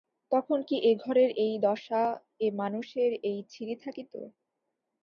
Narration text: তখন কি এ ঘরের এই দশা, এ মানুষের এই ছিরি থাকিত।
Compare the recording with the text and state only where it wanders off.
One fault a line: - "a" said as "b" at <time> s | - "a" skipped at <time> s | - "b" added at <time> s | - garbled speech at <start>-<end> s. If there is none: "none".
none